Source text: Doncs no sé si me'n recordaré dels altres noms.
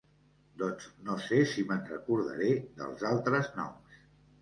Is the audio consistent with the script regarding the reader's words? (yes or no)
yes